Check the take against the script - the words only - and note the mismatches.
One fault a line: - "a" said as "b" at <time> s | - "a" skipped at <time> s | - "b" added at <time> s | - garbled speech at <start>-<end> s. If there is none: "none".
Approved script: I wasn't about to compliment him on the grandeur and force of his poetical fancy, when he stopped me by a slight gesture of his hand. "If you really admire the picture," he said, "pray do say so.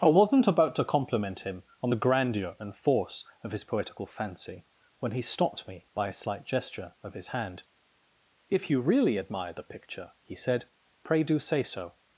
none